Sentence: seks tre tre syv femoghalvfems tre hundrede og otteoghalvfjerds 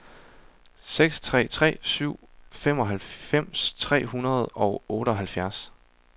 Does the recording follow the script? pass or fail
pass